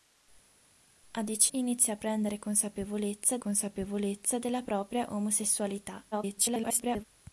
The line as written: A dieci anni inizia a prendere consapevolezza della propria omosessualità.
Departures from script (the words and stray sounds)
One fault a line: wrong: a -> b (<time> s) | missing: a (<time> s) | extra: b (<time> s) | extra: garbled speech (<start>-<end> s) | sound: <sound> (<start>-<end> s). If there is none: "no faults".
missing: anni (1.5 s)
extra: consapevolezza (3.4 s)
extra: garbled speech (6.1-7.0 s)